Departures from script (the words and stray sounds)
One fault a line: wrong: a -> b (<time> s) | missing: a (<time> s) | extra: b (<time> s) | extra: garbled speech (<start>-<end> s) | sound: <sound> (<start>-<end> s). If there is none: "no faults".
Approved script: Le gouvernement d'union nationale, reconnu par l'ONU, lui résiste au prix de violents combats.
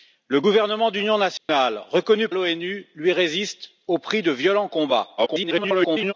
sound: dropout (1.4-1.5 s)
missing: par (2.3 s)
extra: garbled speech (5.2-6.1 s)